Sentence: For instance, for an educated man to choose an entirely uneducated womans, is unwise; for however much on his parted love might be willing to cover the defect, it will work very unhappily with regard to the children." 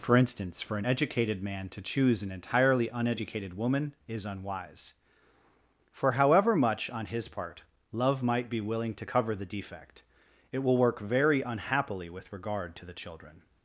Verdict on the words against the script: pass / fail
fail